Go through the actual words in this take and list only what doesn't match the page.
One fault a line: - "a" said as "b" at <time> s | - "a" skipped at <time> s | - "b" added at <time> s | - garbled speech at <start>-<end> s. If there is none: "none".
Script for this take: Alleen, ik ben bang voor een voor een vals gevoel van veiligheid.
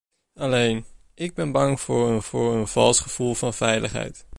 none